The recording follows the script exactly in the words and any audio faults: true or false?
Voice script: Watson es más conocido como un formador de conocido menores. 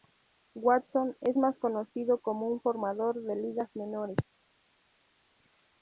false